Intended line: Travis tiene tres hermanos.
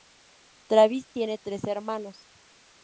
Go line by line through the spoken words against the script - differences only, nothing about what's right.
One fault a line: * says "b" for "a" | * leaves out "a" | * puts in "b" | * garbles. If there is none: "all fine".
all fine